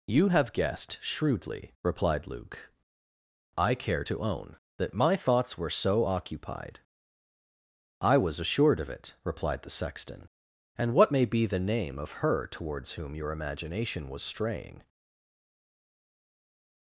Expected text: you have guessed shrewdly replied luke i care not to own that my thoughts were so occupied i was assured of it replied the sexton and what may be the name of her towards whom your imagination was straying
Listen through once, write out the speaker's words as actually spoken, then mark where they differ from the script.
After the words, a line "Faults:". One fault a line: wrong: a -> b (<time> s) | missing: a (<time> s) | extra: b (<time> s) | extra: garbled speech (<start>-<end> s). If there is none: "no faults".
you have guessed shrewdly replied luke i care to own that my thoughts were so occupied i was assured of it replied the sexton and what may be the name of her towards whom your imagination was straying
Faults:
missing: not (4.0 s)